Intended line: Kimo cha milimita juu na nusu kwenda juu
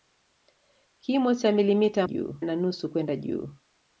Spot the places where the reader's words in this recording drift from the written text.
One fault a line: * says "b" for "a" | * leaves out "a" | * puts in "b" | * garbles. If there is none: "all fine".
all fine